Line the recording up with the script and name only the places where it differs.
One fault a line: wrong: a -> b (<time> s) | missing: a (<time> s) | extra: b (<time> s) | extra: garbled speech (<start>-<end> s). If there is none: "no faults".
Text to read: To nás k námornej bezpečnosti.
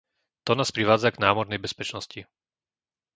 extra: privádza (0.7 s)